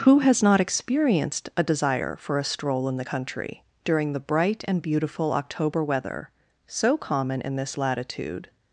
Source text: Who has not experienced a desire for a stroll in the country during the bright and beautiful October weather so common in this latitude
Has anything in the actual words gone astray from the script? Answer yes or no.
no